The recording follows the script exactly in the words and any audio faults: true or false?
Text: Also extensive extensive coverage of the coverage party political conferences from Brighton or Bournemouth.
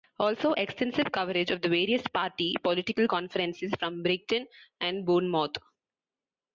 false